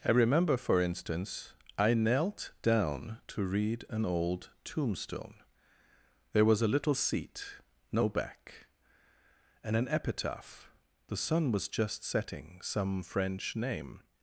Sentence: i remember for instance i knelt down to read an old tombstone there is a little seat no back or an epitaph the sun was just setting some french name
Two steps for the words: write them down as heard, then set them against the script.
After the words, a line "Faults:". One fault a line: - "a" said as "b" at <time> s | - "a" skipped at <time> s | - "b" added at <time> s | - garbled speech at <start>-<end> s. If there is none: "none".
i remember for instance i knelt down to read an old tombstone there was a little seat no back and an epitaph the sun was just setting some french name
Faults:
- "is" said as "was" at 6.5 s
- "or" said as "and" at 9.6 s